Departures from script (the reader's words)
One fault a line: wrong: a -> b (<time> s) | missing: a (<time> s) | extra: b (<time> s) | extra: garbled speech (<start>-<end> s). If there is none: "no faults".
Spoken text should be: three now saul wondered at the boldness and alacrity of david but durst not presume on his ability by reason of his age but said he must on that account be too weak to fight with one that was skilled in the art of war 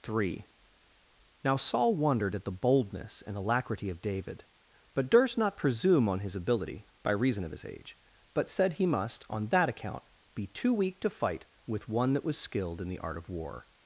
no faults